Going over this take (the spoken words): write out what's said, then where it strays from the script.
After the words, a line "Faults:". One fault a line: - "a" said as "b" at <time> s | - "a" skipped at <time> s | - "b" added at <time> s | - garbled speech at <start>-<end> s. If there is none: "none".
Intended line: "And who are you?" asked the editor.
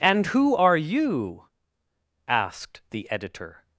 "And who are you?" asked the editor.
Faults:
none